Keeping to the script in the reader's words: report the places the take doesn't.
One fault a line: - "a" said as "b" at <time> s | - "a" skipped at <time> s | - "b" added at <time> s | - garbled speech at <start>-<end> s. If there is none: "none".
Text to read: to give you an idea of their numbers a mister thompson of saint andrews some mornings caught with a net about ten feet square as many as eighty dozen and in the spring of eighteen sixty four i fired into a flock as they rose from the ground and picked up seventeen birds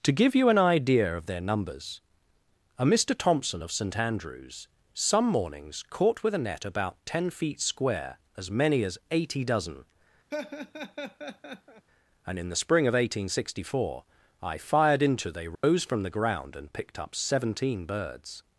- "a flock as" skipped at 15.3 s